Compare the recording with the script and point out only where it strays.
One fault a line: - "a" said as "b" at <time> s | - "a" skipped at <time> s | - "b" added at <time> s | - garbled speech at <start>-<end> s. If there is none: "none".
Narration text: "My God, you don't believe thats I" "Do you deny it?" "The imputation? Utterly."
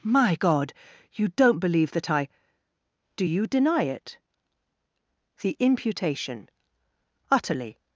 - "thats" said as "that" at 1.9 s